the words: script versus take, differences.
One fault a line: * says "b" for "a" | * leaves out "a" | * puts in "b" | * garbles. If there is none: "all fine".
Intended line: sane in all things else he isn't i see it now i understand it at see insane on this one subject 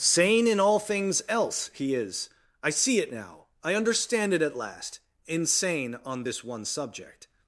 * says "is" for "isn't"
* says "last" for "see"